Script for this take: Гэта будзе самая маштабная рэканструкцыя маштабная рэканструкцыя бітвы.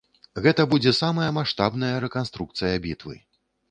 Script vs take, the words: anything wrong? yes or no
yes